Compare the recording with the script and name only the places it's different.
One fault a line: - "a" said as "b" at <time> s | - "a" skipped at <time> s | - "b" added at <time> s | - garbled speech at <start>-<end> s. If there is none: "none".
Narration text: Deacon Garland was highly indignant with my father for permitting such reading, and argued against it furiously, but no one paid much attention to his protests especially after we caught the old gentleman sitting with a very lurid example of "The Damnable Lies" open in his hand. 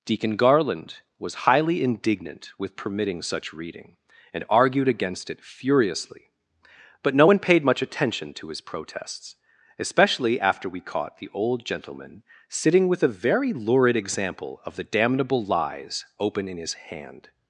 - "my father for" skipped at 2.8 s